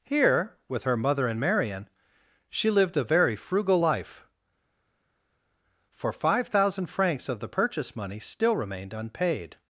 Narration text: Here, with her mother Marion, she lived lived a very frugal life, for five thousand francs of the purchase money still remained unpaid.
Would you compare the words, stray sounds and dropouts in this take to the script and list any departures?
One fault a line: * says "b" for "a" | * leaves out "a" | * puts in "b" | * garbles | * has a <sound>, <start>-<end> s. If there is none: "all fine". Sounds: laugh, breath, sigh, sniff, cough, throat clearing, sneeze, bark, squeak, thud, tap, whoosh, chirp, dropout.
* puts in "and"
* leaves out "lived"